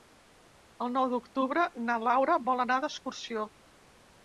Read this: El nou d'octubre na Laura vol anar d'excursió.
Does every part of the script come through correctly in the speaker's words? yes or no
yes